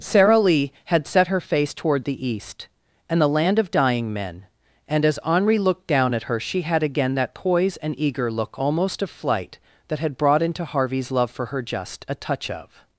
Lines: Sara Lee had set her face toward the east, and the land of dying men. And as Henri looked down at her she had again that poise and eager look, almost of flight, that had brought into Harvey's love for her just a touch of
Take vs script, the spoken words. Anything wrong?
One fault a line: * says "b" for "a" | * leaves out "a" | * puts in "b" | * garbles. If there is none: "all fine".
all fine